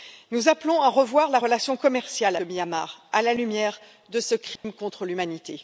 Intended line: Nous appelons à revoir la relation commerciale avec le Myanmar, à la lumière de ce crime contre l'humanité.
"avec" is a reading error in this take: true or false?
true